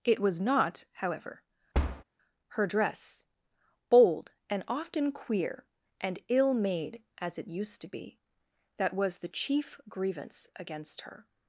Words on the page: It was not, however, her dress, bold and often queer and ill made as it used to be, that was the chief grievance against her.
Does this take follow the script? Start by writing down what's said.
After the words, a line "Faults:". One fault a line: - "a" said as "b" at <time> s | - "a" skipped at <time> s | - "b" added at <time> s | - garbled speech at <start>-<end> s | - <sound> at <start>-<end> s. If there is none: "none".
It was not, however, her dress, bold and often queer and ill made as it used to be, that was the chief grievance against her.
Faults:
- thud at 1.7-2.0 s